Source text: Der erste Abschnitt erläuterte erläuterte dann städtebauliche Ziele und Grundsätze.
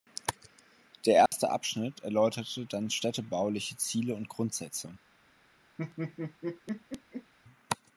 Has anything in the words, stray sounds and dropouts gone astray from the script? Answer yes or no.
yes